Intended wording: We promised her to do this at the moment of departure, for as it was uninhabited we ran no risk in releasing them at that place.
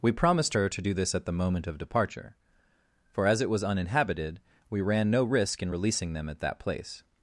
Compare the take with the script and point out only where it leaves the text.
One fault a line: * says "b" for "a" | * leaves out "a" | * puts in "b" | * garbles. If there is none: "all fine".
all fine